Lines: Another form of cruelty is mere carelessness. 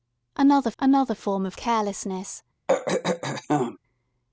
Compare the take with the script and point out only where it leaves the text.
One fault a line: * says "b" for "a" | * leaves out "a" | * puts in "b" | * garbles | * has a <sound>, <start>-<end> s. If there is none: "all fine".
* puts in "another"
* leaves out "cruelty is mere"
* has a throat clearing, 2.7-3.8 s